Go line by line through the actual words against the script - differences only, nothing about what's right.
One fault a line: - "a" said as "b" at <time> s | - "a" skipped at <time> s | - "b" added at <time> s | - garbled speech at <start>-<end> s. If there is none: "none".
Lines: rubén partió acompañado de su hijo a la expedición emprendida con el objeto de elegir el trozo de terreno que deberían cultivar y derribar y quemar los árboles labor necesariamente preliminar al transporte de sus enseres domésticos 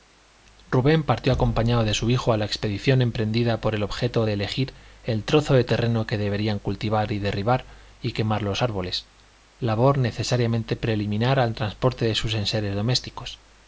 none